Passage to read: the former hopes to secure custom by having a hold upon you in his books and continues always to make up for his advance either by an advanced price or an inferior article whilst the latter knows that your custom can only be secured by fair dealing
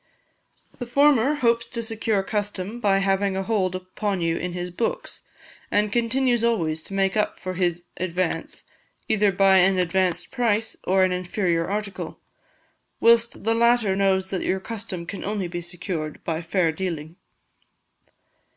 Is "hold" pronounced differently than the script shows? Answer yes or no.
no